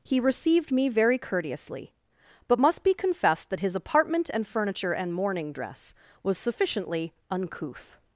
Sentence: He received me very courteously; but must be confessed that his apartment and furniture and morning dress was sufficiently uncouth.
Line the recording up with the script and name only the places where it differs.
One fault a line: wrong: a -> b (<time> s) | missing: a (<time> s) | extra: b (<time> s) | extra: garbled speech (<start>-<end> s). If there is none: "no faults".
no faults